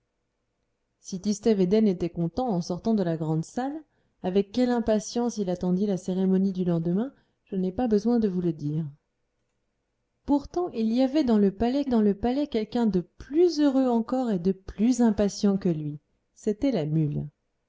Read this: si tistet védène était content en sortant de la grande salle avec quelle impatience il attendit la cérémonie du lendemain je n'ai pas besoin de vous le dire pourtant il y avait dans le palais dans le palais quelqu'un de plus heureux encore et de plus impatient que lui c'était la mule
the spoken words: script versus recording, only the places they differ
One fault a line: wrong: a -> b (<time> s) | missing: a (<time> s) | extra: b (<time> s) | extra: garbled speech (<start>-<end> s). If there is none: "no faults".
no faults